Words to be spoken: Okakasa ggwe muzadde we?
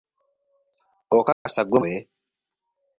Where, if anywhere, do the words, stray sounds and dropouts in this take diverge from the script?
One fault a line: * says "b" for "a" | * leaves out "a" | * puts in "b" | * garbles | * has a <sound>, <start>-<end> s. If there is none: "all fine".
* has a dropout, 1.3-1.5 s
* leaves out "muzadde"